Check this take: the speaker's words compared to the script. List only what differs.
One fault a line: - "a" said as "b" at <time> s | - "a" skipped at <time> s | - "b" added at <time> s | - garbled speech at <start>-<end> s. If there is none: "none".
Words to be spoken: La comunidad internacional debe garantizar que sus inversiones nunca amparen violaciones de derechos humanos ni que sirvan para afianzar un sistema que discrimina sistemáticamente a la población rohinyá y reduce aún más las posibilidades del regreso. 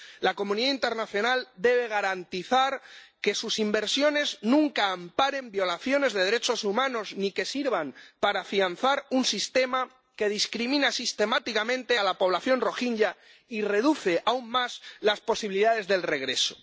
none